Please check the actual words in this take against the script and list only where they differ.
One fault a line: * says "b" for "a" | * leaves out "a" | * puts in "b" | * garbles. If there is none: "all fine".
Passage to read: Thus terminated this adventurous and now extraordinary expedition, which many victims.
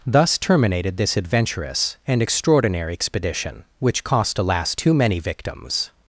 * leaves out "now"
* puts in "cost alas too"